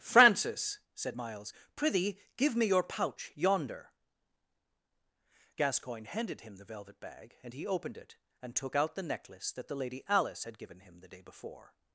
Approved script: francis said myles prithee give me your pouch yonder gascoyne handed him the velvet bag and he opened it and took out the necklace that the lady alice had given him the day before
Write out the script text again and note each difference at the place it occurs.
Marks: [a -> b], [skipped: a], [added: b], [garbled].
francis said myles prithee give me your pouch yonder gascoyne handed him the velvet bag and he opened it and took out the necklace that the lady alice had given him the day before